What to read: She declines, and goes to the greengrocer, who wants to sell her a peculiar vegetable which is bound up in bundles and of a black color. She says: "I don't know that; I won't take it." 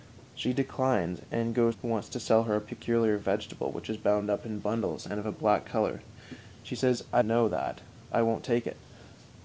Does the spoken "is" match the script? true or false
true